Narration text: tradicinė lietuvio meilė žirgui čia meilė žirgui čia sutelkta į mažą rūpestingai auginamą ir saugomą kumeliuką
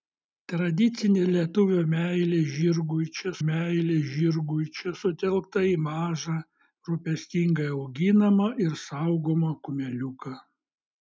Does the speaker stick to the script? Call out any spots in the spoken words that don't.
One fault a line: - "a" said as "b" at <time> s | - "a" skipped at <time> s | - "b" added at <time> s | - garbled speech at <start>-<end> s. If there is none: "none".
none